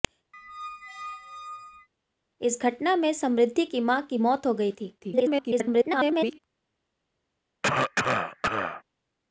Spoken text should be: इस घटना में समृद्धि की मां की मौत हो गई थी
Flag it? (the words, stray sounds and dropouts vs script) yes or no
yes